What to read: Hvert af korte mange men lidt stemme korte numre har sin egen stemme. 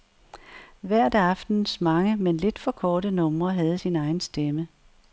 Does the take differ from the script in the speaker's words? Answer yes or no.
yes